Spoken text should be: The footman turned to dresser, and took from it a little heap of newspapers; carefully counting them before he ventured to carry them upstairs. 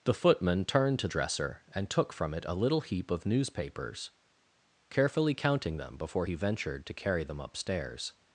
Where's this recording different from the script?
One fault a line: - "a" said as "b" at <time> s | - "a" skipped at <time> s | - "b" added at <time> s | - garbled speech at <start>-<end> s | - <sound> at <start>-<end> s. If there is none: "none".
none